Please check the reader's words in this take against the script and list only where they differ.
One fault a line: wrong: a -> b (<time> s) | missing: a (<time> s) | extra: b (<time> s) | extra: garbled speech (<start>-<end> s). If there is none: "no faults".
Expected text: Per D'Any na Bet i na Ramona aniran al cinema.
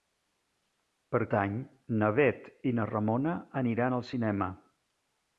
no faults